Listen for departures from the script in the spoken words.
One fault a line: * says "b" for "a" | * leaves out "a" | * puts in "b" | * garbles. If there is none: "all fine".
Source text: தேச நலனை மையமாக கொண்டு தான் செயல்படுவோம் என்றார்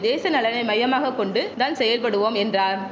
all fine